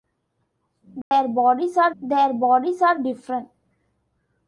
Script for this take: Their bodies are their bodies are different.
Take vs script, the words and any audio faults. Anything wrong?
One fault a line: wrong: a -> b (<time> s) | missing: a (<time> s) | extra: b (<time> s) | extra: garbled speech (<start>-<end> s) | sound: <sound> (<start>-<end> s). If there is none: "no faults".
sound: dropout (1.0-1.1 s)